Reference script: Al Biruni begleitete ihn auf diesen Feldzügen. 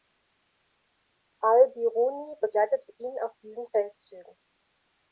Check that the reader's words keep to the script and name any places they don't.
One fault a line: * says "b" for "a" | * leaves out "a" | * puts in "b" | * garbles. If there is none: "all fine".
all fine